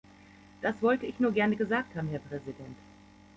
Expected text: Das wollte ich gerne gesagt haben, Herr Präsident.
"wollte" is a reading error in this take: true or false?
false